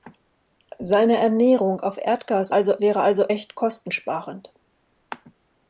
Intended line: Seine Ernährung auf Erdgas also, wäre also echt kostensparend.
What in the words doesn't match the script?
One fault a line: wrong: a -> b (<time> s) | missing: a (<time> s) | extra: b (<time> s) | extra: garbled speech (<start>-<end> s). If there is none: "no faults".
no faults